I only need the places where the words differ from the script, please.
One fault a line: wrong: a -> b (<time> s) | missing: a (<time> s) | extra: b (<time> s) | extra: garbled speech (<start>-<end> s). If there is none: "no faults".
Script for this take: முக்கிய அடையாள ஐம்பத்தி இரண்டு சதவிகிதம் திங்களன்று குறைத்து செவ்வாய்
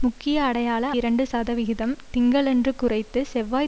missing: ஐம்பத்தி (0.8 s)